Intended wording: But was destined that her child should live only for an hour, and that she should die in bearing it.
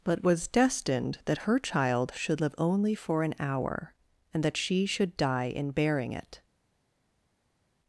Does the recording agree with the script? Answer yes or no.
yes